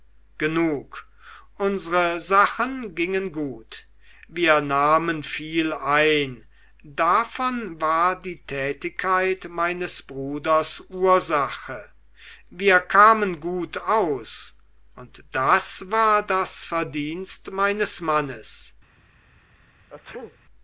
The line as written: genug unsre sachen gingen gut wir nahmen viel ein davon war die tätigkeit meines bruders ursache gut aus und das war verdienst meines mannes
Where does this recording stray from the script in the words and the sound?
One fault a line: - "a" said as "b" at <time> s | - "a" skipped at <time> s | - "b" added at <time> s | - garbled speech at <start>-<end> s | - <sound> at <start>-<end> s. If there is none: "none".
- "wir kamen" added at 12.5 s
- "das" added at 16.2 s
- sneeze at 19.9-20.4 s